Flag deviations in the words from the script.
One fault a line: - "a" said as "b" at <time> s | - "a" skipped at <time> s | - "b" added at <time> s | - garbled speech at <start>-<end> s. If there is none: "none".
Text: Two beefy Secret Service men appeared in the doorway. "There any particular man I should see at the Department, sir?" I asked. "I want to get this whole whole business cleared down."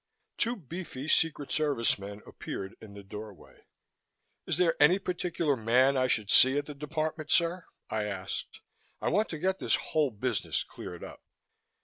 - "Is" added at 4.5 s
- "whole" skipped at 10.1 s
- "down" said as "up" at 11.0 s